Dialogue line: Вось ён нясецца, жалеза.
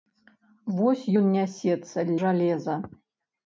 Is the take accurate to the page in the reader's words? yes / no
yes